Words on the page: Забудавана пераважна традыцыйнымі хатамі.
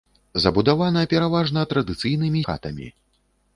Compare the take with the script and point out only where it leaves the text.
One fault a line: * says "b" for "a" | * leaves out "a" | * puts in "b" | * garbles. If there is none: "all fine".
all fine